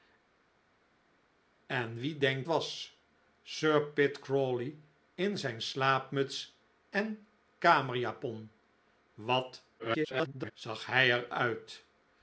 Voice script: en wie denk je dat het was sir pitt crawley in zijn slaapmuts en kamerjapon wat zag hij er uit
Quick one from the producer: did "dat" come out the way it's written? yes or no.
no